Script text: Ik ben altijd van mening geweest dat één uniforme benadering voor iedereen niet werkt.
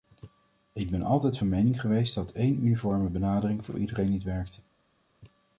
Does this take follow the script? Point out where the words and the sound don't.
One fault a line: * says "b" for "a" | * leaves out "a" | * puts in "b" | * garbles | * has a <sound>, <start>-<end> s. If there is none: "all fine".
* puts in "voor"